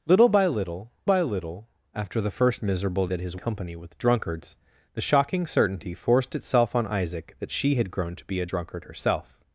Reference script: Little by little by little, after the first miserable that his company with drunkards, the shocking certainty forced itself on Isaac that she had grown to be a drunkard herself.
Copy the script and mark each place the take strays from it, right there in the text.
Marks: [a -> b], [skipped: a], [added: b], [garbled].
Little by little by little, after the first miserable that his company with drunkards, the shocking certainty forced itself on Isaac that she had grown to be a drunkard herself.